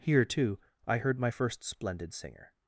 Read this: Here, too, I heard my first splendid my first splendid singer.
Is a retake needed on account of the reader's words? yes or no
yes